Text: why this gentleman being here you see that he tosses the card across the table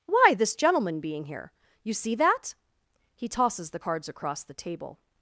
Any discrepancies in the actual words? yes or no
yes